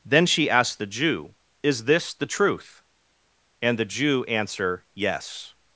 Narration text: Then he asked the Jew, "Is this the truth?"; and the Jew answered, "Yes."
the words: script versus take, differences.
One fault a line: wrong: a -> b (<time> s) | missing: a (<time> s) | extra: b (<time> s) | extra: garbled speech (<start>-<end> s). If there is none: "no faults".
wrong: he -> she (0.2 s)
wrong: answered -> answer (4.2 s)